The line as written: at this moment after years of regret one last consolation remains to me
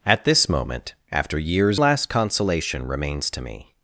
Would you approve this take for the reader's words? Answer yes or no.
no